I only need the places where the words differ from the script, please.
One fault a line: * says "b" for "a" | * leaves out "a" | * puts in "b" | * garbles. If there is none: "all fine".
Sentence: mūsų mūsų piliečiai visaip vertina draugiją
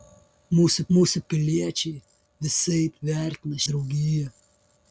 all fine